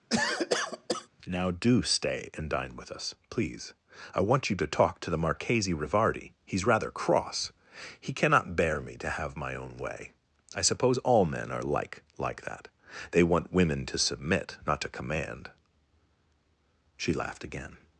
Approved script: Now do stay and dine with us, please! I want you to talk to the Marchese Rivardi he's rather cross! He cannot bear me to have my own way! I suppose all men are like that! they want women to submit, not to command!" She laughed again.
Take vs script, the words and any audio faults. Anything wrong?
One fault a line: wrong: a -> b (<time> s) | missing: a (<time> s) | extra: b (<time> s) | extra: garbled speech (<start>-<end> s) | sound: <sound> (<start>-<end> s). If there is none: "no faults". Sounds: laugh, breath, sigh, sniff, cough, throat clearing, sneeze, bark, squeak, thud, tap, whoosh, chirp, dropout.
sound: cough (0.1-1.1 s)
extra: like (12.2 s)